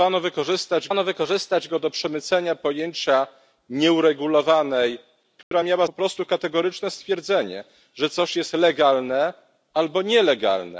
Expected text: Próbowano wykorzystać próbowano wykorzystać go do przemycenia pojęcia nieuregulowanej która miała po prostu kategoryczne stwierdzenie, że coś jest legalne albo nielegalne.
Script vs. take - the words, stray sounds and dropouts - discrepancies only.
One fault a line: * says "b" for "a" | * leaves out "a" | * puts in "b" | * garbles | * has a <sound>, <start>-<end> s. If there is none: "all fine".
* has a dropout, 5.4-5.5 s